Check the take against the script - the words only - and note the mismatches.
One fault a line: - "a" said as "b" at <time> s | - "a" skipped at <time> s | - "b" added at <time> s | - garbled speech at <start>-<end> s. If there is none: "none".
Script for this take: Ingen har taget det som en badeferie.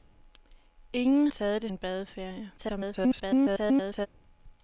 - "har" skipped at 1.3 s
- "som" skipped at 1.7 s
- garbled speech at 2.6-4.1 s